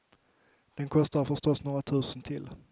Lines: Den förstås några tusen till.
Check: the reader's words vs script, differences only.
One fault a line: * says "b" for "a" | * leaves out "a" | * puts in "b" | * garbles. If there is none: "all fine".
* puts in "kostar"